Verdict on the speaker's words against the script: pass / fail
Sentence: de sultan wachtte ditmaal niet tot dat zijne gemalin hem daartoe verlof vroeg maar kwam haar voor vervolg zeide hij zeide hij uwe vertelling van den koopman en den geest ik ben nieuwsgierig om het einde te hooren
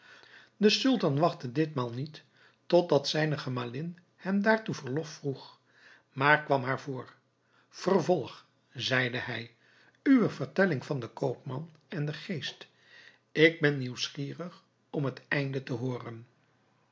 fail